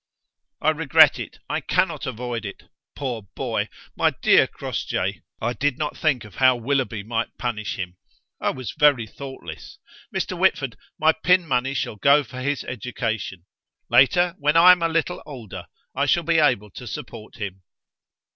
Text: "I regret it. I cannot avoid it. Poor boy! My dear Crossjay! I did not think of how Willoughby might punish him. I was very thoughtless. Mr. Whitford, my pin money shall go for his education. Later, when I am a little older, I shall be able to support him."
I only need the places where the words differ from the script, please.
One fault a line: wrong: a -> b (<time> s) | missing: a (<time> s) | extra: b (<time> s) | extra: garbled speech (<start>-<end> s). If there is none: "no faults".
no faults